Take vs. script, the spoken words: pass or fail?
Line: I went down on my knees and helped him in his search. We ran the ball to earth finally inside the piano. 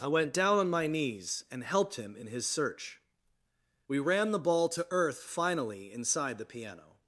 pass